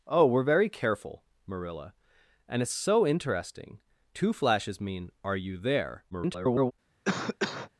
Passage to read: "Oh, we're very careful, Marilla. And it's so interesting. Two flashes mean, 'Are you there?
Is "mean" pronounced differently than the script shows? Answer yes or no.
no